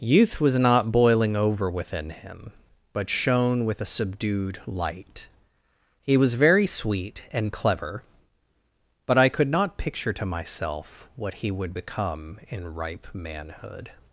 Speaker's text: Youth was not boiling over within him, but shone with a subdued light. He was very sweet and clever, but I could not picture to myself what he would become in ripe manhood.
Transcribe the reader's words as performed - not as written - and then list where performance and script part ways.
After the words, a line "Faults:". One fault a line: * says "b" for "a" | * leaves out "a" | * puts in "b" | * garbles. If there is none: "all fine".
Youth was not boiling over within him, but shone with a subdued light. He was very sweet and clever, but I could not picture to myself what he would become in ripe manhood.
Faults:
all fine